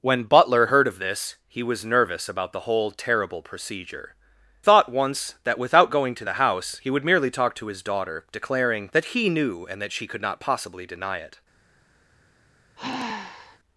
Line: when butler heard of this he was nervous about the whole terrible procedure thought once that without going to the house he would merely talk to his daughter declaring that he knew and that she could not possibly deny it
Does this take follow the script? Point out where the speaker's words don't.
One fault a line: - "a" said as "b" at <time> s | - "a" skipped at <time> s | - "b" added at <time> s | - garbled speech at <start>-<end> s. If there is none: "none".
none